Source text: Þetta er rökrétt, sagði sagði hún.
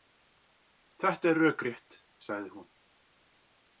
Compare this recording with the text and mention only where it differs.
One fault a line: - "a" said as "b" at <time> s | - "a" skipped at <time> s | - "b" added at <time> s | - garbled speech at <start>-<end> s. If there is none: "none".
- "sagði" skipped at 2.5 s